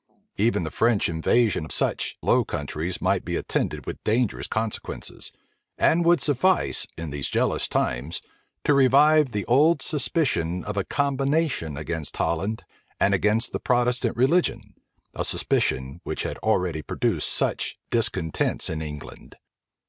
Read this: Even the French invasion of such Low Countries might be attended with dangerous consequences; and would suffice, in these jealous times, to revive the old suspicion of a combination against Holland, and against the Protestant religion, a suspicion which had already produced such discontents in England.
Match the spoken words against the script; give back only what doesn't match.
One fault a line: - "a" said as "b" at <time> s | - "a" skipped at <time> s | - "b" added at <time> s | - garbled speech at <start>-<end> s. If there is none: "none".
none